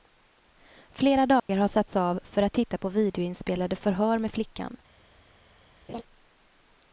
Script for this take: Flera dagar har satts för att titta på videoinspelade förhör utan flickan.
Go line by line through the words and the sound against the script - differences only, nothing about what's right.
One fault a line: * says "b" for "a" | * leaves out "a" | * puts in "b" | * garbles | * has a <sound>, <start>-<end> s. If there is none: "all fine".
* has a dropout, 1.4-1.5 s
* puts in "av"
* says "med" for "utan"
* has a laugh, 5.9-6.0 s